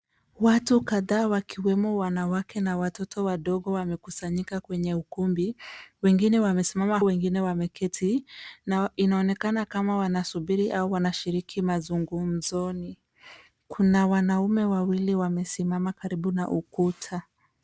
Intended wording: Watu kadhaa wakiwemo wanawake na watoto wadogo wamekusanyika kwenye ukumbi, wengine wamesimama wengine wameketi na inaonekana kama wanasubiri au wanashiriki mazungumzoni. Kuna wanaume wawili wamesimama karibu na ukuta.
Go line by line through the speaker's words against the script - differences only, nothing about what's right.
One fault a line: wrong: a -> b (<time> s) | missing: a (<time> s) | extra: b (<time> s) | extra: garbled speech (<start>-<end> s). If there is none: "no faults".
no faults